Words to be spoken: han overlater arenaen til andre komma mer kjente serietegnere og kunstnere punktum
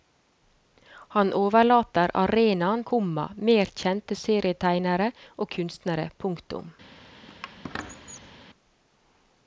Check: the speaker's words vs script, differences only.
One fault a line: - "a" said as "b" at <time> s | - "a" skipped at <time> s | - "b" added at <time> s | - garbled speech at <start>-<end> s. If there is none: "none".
- "til andre" skipped at 2.8 s